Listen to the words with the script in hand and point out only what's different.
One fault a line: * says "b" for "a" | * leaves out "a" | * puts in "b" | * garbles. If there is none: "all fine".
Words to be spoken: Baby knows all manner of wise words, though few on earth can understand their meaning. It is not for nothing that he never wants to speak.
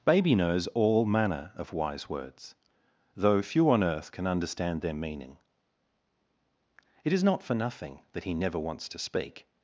all fine